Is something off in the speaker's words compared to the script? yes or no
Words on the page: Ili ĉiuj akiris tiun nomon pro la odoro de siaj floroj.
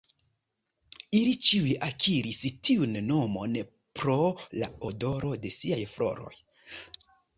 no